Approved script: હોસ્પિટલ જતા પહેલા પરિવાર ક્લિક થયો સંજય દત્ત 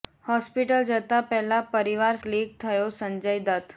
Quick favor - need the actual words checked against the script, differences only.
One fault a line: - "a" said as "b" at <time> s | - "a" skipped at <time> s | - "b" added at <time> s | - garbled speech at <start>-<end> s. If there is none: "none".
none